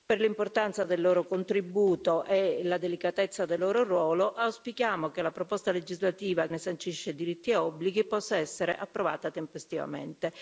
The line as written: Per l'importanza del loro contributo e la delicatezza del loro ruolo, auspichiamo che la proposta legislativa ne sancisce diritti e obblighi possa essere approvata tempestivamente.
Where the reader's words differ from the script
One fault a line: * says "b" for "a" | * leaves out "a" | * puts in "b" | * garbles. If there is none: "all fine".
all fine